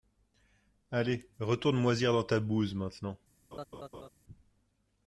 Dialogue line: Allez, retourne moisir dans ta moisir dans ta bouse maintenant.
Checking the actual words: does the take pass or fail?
fail